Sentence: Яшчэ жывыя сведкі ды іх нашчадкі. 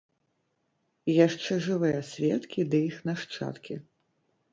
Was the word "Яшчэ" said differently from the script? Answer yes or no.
no